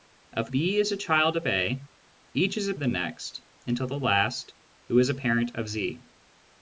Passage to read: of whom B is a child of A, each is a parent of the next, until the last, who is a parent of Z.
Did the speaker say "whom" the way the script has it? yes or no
no